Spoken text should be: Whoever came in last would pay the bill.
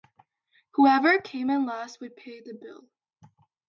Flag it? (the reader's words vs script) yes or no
no